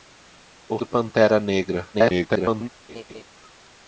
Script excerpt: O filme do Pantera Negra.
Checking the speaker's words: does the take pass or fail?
fail